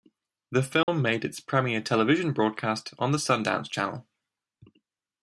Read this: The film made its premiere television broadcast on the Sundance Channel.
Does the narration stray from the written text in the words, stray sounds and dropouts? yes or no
yes